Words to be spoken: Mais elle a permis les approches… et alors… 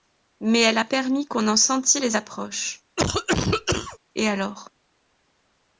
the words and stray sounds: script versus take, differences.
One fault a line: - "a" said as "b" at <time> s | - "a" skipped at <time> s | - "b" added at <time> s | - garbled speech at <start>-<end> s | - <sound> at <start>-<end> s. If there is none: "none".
- "qu'on en sentît" added at 1.3 s
- cough at 3.0-4.0 s